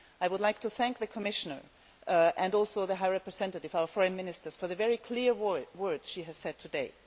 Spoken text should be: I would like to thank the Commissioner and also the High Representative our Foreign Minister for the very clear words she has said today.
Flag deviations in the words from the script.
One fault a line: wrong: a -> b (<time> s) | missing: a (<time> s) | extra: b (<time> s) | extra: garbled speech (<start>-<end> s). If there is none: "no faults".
no faults